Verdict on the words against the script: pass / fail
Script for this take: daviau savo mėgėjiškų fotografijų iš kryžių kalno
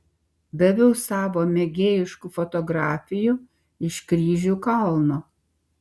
pass